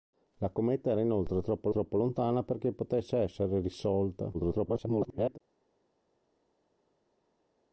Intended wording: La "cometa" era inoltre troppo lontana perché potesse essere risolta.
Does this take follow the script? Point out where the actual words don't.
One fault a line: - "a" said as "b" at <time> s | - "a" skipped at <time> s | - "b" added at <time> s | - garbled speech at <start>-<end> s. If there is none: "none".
- "troppo" added at 1.7 s
- garbled speech at 4.3-5.4 s